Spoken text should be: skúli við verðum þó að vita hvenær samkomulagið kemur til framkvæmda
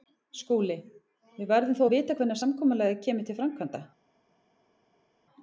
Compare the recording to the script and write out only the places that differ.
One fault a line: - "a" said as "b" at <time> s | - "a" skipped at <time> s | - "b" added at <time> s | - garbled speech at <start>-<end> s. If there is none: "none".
none